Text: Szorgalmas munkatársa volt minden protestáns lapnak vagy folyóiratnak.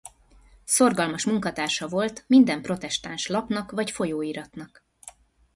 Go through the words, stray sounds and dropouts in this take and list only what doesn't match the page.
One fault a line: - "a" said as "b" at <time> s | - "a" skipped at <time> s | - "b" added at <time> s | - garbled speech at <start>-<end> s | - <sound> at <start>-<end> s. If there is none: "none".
none